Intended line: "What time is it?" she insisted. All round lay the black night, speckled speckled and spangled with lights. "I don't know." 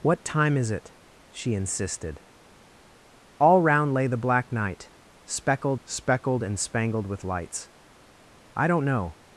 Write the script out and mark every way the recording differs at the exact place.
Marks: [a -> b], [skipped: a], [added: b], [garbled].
"What time is it?" she insisted. All round lay the black night, speckled speckled and spangled with lights. "I don't know."